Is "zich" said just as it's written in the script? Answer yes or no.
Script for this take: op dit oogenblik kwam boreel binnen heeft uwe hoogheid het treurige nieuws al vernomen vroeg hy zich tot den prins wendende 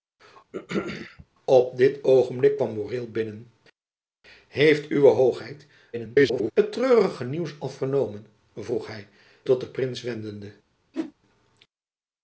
no